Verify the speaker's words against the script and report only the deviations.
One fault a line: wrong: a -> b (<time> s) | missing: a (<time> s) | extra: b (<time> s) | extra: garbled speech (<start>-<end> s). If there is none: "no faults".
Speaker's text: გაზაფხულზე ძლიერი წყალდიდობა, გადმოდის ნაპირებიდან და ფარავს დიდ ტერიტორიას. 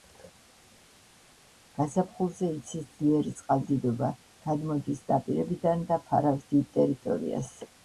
extra: იცის (2.6 s)